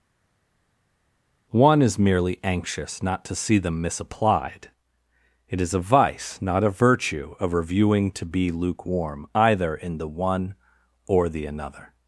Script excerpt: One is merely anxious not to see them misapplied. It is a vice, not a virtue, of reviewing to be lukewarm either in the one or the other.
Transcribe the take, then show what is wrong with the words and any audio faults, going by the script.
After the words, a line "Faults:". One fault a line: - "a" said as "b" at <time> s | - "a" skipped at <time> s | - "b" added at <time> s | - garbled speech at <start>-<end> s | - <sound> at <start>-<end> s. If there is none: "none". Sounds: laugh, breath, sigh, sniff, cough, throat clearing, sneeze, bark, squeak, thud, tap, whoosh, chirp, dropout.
One is merely anxious not to see them misapplied. It is a vice, not a virtue, of reviewing to be lukewarm either in the one or the another.
Faults:
- "other" said as "another" at 11.5 s